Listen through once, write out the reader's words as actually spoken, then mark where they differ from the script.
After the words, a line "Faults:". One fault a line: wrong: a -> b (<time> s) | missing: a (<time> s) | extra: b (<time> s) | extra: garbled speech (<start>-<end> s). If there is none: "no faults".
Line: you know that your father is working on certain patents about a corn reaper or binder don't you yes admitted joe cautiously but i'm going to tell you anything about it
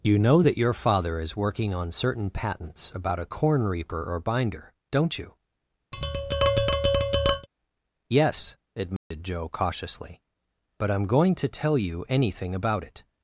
you know that your father is working on certain patents about a corn reaper or binder don't you yes admitted joe cautiously but i'm going to tell you anything about it
Faults:
no faults